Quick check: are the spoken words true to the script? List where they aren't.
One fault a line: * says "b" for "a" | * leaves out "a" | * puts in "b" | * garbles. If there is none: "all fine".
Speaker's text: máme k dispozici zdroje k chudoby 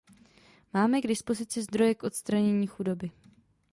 * puts in "odstranění"